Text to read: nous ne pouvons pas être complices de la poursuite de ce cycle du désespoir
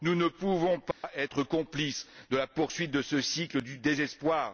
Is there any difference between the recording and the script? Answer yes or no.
no